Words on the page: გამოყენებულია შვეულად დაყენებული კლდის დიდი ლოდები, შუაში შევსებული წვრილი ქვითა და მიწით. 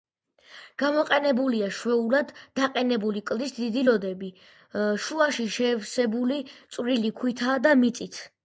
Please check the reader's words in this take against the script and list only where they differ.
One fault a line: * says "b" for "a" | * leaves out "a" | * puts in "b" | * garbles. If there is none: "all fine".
all fine